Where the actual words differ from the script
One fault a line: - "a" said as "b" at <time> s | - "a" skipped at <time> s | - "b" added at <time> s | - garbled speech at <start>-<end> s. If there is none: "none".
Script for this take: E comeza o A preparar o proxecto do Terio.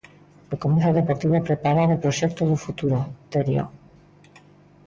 - "Deportivo" added at 1.0 s
- "futuro" added at 2.6 s